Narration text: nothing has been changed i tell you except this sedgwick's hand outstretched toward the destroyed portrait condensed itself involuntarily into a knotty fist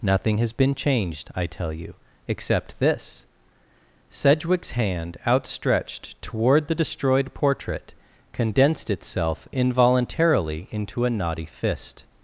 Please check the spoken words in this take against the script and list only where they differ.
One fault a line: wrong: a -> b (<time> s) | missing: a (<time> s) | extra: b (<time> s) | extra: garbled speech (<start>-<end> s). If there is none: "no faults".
no faults